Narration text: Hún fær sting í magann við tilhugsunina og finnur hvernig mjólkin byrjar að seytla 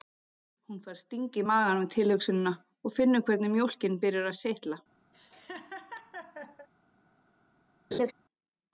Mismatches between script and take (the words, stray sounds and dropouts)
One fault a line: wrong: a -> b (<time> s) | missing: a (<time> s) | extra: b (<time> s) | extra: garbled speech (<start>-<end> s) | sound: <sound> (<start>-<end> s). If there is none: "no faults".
sound: laugh (5.1-6.7 s)
sound: laugh (7.9-8.1 s)